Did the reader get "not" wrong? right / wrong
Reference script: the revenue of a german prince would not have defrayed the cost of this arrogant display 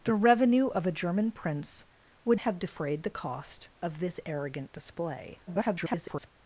wrong